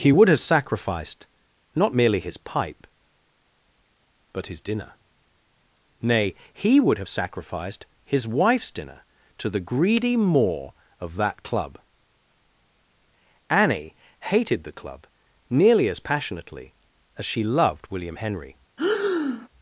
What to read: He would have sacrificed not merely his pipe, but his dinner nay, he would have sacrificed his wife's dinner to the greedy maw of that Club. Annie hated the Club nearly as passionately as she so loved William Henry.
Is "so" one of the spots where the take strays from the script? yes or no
yes